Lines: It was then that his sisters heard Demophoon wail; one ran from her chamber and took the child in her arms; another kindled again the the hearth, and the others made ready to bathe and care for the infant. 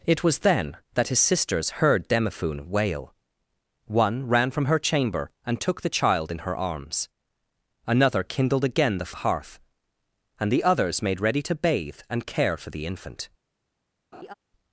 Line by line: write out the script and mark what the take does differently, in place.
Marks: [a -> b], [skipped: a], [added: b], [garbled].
It was then that his sisters heard Demophoon wail; one ran from her chamber and took the child in her arms; another kindled again the the hearth, and the others made ready to bathe and care for the infant.